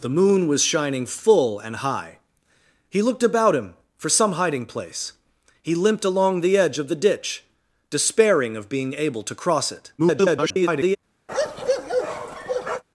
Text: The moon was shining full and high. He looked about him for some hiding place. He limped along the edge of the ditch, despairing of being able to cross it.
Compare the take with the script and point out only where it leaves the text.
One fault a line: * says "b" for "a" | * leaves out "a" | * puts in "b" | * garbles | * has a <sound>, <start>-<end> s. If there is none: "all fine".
* garbles
* has a bark, 11.3-12.8 s